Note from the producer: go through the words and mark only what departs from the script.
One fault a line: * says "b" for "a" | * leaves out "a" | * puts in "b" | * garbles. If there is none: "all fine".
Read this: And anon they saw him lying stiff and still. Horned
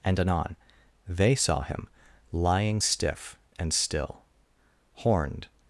all fine